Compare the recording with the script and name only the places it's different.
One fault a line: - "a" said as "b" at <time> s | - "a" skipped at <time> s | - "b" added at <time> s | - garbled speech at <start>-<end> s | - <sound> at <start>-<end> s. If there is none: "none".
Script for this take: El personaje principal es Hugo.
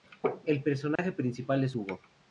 - dropout at 1.0-1.0 s